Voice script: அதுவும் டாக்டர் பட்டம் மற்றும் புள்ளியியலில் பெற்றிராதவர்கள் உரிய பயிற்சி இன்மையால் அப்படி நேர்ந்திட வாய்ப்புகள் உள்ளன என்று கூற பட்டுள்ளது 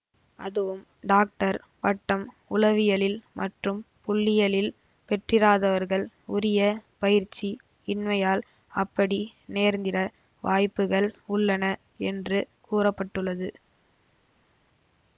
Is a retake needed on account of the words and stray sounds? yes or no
yes